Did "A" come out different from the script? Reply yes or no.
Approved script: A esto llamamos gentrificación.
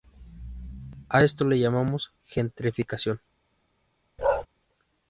no